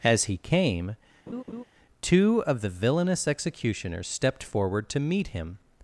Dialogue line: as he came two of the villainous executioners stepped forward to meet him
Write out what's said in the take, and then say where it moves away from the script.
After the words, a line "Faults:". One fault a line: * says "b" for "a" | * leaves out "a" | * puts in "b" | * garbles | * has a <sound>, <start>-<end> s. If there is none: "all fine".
as he came two of the villainous executioners stepped forward to meet him
Faults:
* has a laugh, 1.3-1.6 s